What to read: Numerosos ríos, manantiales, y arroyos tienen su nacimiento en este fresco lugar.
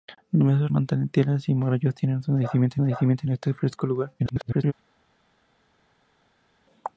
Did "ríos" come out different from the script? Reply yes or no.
yes